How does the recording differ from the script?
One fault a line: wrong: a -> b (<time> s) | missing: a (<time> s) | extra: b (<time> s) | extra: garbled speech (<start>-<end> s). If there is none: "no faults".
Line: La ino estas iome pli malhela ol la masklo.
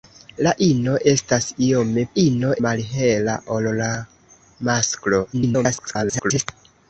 wrong: pli -> ino (2.2 s)
extra: garbled speech (5.3-6.5 s)